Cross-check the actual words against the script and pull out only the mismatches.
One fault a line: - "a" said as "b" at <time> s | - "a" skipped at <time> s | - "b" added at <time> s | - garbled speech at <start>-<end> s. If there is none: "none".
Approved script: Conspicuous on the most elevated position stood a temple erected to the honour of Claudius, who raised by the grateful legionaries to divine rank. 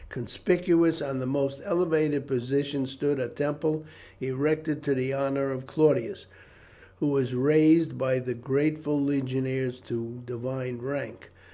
- "was" added at 7.1 s